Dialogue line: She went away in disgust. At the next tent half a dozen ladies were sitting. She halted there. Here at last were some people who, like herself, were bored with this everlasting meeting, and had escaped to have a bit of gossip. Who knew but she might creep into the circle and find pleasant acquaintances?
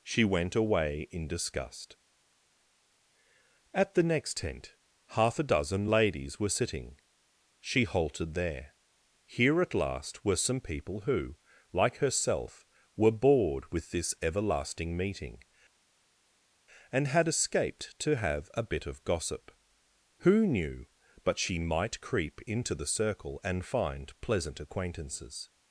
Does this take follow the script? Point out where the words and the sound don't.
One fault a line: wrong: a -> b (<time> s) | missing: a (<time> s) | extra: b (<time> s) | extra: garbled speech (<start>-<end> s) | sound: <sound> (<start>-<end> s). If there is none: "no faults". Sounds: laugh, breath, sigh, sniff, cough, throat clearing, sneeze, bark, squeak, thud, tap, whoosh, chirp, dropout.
no faults